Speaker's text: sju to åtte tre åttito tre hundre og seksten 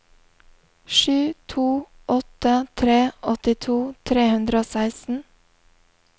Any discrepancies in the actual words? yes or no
no